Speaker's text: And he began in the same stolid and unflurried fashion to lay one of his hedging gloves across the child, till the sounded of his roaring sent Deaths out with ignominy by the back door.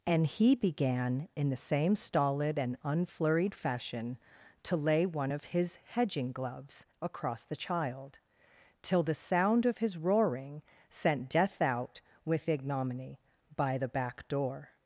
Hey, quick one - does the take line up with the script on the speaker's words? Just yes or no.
no